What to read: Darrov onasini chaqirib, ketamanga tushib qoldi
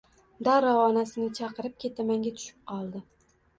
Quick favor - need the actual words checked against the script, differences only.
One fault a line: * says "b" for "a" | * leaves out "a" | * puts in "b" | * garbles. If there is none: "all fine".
all fine